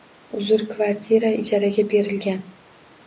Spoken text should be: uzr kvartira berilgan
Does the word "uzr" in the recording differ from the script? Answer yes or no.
no